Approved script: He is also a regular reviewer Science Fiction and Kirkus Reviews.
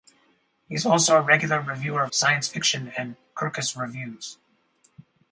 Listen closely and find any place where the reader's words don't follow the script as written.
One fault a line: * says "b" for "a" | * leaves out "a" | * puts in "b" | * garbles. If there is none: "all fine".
all fine